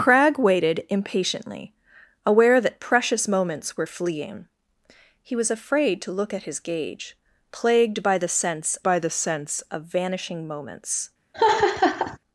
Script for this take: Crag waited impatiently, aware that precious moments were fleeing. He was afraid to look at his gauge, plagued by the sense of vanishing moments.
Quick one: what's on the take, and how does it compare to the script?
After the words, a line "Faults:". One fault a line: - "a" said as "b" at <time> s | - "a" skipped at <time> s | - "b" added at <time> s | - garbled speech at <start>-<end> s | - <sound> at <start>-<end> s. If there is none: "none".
Crag waited impatiently, aware that precious moments were fleeing. He was afraid to look at his gauge, plagued by the sense by the sense of vanishing moments.
Faults:
- "by the sense" added at 8.8 s
- laugh at 11.3-12.2 s